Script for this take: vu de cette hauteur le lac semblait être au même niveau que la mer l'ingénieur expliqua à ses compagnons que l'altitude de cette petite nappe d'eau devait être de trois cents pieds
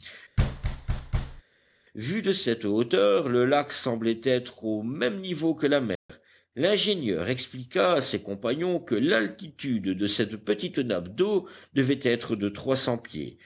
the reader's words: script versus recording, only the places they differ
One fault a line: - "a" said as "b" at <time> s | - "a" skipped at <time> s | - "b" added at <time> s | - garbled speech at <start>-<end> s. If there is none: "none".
none